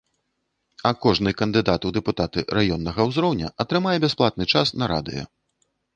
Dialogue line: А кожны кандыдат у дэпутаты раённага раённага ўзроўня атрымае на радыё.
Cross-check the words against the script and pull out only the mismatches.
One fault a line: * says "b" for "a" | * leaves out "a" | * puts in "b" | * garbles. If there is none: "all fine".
* leaves out "раённага"
* puts in "бясплатны час"